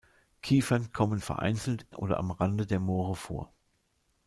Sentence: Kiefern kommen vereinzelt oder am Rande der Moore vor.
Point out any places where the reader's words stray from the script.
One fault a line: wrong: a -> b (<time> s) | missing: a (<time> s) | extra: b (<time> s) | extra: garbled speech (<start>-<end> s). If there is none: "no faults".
no faults